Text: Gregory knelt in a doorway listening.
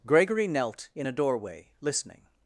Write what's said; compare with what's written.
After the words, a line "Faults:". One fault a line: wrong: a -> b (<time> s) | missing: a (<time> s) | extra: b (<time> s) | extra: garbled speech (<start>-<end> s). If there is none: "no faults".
Gregory knelt in a doorway listening.
Faults:
no faults